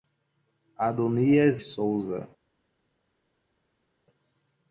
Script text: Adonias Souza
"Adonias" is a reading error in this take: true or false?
false